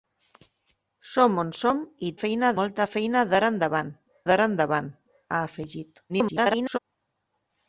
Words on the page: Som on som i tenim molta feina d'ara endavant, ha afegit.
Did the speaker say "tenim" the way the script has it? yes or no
no